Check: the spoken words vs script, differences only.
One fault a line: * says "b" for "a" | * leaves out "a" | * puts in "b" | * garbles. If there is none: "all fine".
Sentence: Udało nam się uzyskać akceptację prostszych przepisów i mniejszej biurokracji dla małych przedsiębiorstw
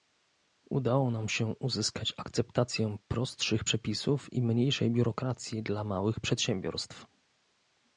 all fine